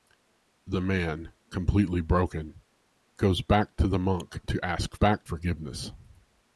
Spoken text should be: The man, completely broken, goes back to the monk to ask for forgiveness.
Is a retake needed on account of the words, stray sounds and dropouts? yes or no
yes